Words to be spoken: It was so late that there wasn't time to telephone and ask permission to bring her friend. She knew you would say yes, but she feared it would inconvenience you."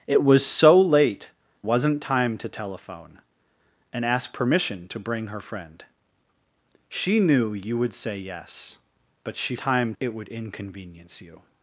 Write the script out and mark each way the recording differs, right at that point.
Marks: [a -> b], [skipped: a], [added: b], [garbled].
It was so late [skipped: that there] wasn't time to telephone and ask permission to bring her friend. She knew you would say yes, but she [feared -> time] it would inconvenience you."